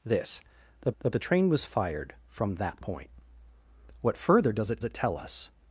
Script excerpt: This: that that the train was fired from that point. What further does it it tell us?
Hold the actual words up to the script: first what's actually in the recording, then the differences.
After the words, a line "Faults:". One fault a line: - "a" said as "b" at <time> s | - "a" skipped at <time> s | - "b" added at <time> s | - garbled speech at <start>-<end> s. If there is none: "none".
This: that that the train was fired from that point. What further does it it tell us?
Faults:
none